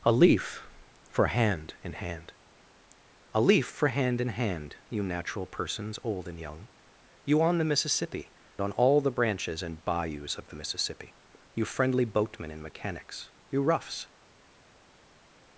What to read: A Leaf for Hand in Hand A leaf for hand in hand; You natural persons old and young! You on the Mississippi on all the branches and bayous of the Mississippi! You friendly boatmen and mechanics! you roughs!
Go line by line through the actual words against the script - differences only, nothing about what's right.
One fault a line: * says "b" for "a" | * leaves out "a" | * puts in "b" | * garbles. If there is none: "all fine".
all fine